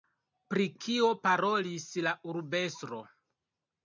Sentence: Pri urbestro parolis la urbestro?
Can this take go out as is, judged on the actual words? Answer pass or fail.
fail